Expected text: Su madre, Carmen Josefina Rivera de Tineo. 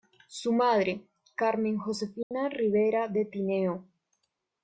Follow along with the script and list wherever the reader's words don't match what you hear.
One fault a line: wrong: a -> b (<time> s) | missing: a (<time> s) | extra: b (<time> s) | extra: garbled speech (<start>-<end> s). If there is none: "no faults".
no faults